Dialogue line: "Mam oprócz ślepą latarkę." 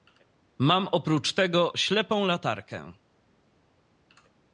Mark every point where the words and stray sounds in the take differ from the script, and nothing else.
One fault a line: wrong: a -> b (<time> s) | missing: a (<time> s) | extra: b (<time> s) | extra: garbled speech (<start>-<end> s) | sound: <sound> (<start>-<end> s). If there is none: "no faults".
extra: tego (1.3 s)